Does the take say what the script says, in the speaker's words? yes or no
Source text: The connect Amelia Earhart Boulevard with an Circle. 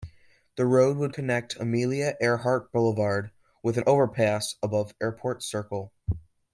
no